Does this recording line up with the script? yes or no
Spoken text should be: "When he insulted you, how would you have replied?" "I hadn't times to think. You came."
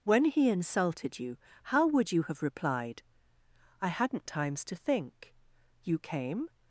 yes